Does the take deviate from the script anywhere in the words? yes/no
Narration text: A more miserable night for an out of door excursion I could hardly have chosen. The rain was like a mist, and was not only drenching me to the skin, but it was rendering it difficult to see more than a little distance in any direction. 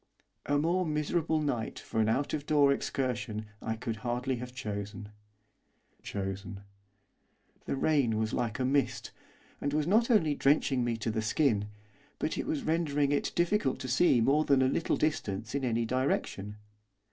yes